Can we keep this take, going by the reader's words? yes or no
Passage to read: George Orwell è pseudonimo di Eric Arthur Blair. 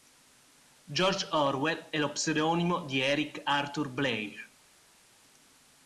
no